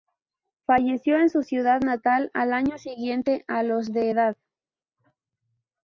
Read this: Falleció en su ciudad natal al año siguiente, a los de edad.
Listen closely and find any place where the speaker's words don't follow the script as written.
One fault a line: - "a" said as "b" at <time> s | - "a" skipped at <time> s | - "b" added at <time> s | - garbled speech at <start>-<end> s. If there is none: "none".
none